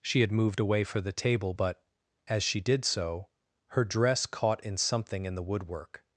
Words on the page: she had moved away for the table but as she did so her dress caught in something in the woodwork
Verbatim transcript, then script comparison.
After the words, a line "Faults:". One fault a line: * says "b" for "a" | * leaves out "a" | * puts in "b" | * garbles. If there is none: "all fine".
she had moved away for the table but as she did so her dress caught in something in the woodwork
Faults:
all fine